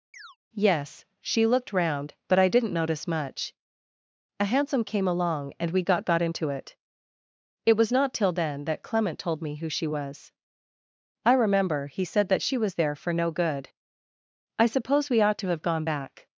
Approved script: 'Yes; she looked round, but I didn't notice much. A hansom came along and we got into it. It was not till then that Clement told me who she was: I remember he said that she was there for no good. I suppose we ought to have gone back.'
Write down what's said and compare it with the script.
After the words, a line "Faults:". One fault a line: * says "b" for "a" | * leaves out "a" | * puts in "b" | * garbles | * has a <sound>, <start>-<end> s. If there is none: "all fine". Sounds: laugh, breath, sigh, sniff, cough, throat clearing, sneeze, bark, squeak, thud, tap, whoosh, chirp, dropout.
'Yes; she looked round, but I didn't notice much. A hansom came along and we got got into it. It was not till then that Clement told me who she was: I remember he said that she was there for no good. I suppose we ought to have gone back.'
Faults:
* has a chirp, 0.1-0.4 s
* puts in "got"